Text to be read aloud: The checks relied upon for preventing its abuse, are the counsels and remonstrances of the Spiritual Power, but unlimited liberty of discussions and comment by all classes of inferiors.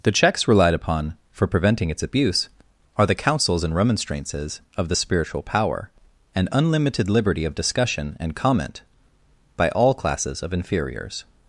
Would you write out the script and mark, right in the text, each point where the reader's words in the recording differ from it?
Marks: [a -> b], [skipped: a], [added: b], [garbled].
The checks relied upon for preventing its abuse, are the counsels and remonstrances of the Spiritual Power, [but -> and] unlimited liberty of [discussions -> discussion] and comment by all classes of inferiors.